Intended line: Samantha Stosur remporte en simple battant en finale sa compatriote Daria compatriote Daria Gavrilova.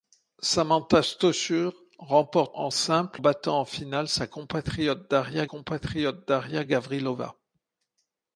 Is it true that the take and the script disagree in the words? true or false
false